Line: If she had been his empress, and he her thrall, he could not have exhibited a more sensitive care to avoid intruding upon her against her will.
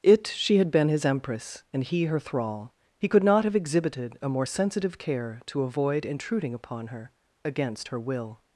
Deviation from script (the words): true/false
true